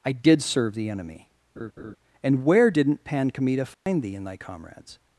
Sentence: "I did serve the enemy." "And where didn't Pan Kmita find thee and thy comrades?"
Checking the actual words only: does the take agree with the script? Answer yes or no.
yes